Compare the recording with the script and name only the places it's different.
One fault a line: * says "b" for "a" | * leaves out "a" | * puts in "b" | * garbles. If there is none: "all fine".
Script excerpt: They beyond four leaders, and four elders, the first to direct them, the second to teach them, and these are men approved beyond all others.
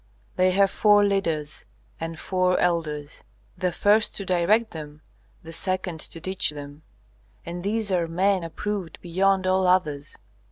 * says "have" for "beyond"